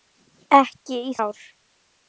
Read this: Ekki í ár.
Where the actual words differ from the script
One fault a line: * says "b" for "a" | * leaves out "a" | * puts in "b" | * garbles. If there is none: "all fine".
all fine